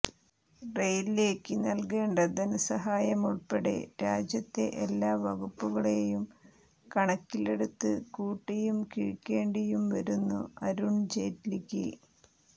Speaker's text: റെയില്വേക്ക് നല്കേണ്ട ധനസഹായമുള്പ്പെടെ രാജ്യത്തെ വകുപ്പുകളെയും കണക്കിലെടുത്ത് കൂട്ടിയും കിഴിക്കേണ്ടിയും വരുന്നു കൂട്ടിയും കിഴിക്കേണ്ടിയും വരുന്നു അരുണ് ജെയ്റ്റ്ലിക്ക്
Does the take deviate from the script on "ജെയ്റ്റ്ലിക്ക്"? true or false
false